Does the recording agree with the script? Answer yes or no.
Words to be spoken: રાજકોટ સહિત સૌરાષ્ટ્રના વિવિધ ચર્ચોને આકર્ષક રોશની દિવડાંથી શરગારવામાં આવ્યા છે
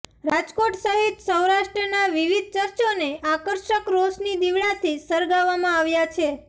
yes